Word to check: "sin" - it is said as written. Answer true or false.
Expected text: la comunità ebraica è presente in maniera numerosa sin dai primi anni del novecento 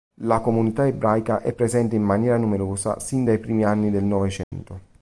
true